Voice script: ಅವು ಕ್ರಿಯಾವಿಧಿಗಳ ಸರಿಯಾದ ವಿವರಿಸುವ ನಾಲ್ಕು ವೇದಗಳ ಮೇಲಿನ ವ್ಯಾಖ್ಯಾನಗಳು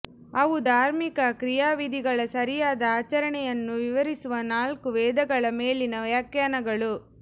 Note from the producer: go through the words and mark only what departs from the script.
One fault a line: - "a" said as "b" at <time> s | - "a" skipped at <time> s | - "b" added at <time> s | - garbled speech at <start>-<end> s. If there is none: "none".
- "ಧಾರ್ಮಿಕ" added at 0.7 s
- "ಆಚರಣೆಯನ್ನು" added at 2.9 s